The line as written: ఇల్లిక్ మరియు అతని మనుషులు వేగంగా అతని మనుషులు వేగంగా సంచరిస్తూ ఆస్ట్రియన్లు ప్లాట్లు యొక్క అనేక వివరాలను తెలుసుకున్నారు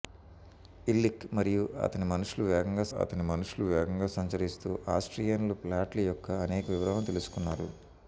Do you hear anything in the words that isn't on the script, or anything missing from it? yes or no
no